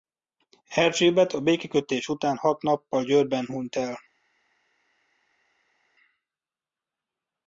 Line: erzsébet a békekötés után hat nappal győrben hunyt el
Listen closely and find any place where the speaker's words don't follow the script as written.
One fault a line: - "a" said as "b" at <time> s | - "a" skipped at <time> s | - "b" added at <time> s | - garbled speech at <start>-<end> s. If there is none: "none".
none